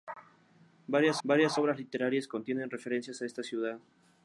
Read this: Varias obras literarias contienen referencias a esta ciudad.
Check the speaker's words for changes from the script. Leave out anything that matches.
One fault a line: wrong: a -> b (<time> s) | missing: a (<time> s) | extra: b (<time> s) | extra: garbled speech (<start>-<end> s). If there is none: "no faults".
extra: varias (1.2 s)